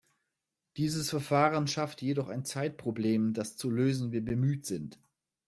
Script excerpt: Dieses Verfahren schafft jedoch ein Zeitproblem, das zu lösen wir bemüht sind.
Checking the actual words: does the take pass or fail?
pass